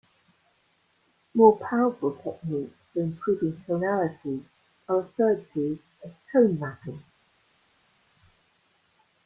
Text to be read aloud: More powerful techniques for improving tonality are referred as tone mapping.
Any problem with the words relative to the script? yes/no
yes